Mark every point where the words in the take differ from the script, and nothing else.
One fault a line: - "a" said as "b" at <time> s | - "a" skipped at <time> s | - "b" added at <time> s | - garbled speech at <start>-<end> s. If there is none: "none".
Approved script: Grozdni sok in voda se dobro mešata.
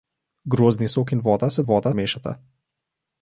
- "dobro" said as "voda" at 1.6 s